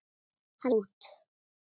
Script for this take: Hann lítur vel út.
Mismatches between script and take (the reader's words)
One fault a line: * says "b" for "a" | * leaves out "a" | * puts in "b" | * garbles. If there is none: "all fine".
* leaves out "lítur vel"